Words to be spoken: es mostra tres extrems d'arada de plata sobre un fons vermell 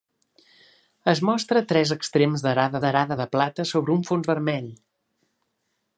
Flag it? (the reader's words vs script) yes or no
yes